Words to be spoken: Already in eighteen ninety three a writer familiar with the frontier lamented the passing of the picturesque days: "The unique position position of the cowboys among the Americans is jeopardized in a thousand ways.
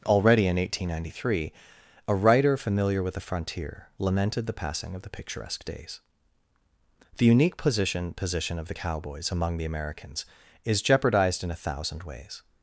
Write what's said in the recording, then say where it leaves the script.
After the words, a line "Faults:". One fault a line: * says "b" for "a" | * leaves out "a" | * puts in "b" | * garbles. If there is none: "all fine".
Already in eighteen ninety three a writer familiar with the frontier lamented the passing of the picturesque days: "The unique position position of the cowboys among the Americans is jeopardized in a thousand ways.
Faults:
all fine